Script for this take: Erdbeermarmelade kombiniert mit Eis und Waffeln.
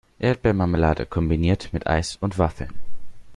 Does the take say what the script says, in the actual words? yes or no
yes